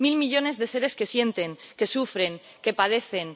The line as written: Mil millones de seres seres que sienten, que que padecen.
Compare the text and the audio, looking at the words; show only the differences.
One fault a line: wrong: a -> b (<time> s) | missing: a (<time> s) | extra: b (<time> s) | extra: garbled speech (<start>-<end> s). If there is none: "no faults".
missing: seres (0.9 s)
extra: sufren (2.0 s)